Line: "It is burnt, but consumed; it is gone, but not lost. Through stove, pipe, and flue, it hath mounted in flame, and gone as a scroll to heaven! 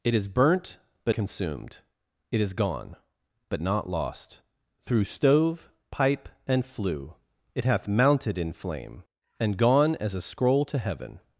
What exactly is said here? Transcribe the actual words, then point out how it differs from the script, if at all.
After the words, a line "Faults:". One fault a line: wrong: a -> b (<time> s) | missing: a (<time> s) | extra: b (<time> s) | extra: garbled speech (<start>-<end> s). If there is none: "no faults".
"It is burnt, but consumed; it is gone, but not lost. Through stove, pipe, and flue, it hath mounted in flame, and gone as a scroll to heaven!
Faults:
no faults